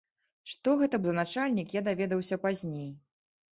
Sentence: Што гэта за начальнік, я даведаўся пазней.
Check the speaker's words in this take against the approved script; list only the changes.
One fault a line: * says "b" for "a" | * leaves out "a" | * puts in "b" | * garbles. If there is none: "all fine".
all fine